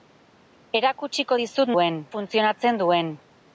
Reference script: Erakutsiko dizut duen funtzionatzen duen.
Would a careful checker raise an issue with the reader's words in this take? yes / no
no